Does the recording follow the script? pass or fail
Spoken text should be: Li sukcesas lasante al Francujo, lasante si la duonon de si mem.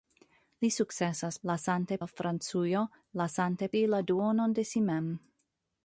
pass